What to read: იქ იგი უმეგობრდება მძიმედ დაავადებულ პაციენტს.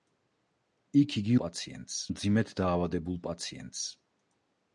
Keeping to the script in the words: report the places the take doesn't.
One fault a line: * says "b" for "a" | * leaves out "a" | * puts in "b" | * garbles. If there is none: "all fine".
* says "პაციენტს" for "უმეგობრდება"